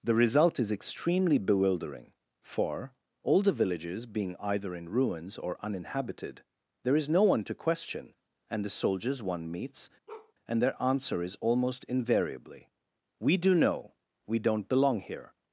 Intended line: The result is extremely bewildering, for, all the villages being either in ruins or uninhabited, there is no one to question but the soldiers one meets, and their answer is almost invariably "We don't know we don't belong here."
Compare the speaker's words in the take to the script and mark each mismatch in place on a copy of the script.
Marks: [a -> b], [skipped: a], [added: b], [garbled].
The result is extremely bewildering, for, all the villages being either in ruins or uninhabited, there is no one to question [but -> and] the soldiers one meets, and their answer is almost invariably "We [don't -> do] know we don't belong here."